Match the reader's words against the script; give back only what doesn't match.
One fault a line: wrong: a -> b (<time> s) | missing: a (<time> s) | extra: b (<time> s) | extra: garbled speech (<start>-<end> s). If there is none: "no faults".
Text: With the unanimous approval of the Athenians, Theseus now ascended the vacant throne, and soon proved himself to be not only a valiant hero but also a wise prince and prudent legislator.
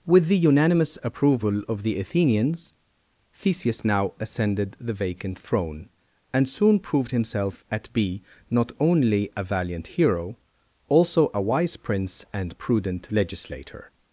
wrong: to -> at (7.7 s)
missing: but (10.4 s)